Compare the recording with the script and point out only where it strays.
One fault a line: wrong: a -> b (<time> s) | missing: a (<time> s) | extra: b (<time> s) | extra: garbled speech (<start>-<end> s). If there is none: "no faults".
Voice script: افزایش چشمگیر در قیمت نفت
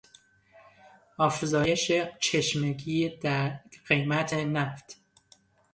no faults